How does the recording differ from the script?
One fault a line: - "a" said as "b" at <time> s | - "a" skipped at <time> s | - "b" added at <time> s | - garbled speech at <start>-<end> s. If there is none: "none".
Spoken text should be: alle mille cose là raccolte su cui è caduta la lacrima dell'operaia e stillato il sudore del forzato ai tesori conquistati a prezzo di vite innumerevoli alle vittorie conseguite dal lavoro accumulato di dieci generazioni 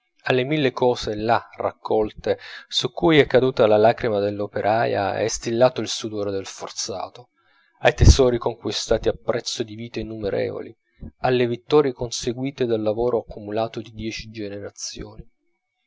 none